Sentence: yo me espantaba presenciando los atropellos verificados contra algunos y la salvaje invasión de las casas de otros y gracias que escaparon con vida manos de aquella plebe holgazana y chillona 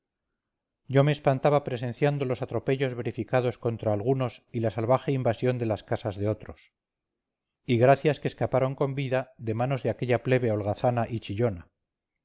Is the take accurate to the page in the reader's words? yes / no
no